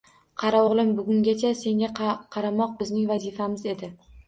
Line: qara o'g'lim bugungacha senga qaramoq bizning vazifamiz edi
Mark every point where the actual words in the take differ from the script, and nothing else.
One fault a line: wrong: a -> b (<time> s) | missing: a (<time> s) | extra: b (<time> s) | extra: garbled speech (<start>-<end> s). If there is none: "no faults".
no faults